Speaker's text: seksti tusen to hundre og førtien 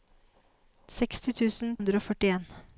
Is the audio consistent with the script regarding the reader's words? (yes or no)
no